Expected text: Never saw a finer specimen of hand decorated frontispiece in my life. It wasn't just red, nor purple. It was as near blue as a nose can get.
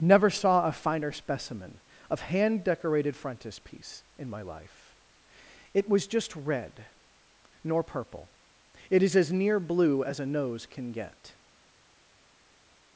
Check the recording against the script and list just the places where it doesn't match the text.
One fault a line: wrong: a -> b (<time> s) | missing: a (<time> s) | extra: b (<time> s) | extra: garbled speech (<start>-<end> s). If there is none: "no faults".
wrong: wasn't -> was (5.9 s)
wrong: was -> is (9.0 s)